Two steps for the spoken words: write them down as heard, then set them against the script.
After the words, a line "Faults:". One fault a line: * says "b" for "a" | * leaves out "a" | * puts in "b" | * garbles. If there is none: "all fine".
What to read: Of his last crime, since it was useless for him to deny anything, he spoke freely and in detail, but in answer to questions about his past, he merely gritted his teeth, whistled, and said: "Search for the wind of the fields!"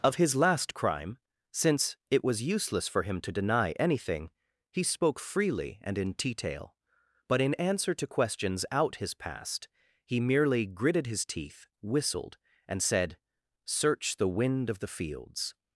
Of his last crime, since it was useless for him to deny anything, he spoke freely and in detail, but in answer to questions out his past, he merely gritted his teeth, whistled, and said: "Search the wind of the fields!"
Faults:
* says "out" for "about"
* leaves out "for"